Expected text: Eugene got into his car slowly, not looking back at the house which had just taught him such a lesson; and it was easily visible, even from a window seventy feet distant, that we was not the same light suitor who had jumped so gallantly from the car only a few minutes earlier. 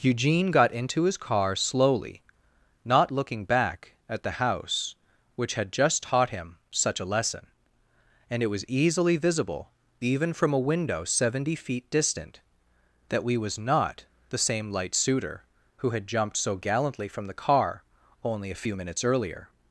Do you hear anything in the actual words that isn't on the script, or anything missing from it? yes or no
no